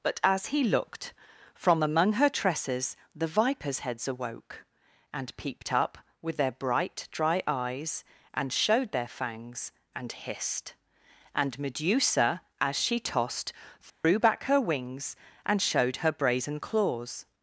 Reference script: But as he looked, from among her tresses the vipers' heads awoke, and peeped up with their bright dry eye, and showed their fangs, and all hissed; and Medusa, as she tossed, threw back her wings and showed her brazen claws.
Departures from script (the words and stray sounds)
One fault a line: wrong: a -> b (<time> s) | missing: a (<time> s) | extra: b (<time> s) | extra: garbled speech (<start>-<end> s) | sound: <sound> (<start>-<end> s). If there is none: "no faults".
wrong: eye -> eyes (7.5 s)
missing: all (10.1 s)
sound: dropout (13.9-14.0 s)